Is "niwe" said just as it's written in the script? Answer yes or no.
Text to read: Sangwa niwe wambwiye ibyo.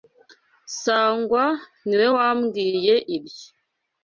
yes